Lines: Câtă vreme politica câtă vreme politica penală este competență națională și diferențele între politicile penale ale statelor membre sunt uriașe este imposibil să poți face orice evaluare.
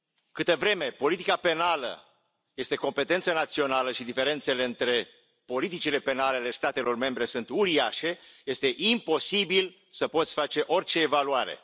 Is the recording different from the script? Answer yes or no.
yes